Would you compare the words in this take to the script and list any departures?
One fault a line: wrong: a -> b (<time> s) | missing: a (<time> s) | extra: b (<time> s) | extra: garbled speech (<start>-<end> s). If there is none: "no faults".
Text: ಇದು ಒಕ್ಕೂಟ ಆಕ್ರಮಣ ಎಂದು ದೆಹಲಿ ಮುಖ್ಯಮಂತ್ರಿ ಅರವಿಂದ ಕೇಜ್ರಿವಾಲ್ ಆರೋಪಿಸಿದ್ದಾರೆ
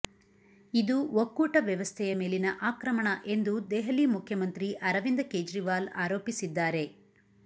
extra: ವ್ಯವಸ್ಥೆಯ ಮೇಲಿನ (1.6 s)